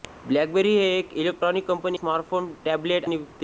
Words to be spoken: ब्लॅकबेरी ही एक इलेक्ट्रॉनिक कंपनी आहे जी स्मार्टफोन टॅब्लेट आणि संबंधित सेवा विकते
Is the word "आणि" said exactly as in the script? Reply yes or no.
no